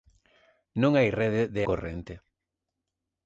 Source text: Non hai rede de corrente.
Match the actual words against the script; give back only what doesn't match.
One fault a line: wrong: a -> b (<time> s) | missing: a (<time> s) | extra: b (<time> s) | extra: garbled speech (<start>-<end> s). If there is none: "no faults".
no faults